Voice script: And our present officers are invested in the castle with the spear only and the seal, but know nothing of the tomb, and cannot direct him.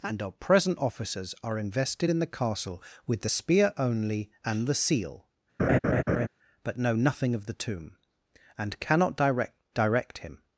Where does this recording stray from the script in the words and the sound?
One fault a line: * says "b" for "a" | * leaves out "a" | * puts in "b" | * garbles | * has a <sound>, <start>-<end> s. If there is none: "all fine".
* has a laugh, 5.6-6.3 s
* puts in "direct"